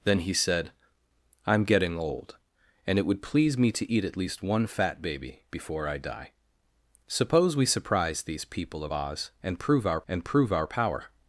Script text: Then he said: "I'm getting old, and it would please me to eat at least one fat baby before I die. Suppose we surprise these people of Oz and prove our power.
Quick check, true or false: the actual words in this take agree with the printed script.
false